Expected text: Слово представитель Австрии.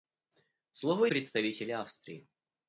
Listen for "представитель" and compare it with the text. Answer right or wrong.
right